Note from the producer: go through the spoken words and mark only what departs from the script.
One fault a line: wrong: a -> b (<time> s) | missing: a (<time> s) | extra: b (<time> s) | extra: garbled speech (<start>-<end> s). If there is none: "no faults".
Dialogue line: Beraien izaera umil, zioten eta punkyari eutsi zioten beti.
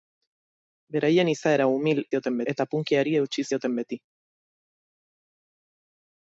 no faults